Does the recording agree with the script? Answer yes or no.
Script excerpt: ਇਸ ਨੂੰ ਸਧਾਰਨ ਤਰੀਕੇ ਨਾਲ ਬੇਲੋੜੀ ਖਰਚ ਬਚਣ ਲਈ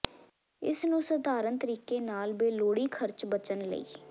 yes